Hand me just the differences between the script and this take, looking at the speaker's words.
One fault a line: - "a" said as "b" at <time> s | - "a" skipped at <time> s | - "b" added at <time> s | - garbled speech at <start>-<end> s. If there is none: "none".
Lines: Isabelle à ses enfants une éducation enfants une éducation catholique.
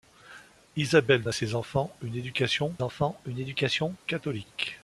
none